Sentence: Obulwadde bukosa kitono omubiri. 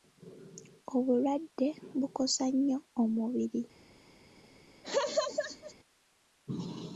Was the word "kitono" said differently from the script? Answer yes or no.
yes